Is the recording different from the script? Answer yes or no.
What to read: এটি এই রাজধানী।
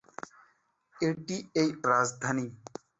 no